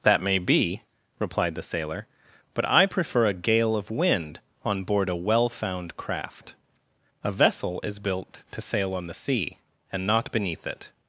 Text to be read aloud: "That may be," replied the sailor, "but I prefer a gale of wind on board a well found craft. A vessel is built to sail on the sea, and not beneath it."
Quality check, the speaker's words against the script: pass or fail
pass